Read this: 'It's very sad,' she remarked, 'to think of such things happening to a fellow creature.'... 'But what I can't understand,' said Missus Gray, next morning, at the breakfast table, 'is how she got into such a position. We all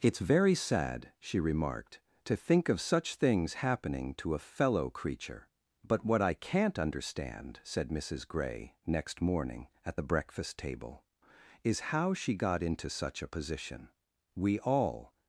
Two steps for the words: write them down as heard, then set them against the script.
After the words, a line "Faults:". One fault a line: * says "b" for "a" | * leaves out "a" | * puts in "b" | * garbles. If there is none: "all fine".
'It's very sad,' she remarked, 'to think of such things happening to a fellow creature.'... 'But what I can't understand,' said Missus Gray, next morning, at the breakfast table, 'is how she got into such a position. We all
Faults:
all fine